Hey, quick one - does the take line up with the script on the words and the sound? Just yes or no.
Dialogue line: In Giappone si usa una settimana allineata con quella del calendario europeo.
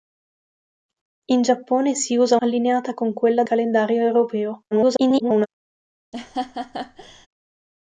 no